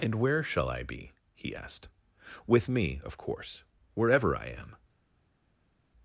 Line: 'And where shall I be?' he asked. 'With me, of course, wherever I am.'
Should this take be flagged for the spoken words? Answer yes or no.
no